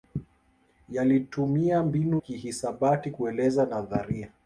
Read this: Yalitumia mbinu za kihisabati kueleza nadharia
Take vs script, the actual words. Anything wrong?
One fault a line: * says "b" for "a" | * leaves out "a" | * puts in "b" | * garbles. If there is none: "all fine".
* leaves out "za"